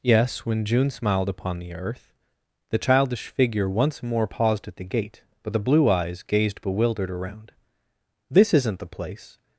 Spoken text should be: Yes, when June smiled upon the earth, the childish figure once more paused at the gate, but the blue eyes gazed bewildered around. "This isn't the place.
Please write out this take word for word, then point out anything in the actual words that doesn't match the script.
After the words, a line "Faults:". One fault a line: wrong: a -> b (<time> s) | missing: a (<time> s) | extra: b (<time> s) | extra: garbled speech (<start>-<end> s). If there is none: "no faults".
Yes, when June smiled upon the earth, the childish figure once more paused at the gate, but the blue eyes gazed bewildered around. "This isn't the place.
Faults:
no faults